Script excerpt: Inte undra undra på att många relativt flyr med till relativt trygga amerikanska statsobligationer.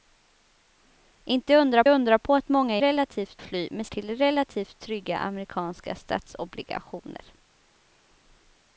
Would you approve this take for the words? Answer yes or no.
yes